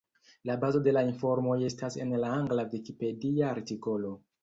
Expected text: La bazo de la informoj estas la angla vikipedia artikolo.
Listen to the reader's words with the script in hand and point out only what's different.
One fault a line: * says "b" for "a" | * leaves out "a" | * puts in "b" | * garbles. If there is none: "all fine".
* puts in "en"